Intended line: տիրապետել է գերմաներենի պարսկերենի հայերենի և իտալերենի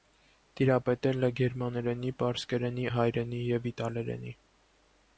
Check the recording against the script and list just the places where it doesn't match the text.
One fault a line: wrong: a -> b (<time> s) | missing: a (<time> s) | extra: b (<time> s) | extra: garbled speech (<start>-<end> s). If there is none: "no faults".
no faults